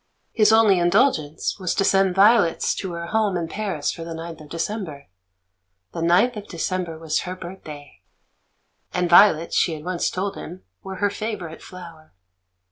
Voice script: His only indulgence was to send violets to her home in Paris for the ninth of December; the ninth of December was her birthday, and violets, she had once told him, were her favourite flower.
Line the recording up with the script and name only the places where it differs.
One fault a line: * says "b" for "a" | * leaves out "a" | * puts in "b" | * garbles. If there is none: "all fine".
all fine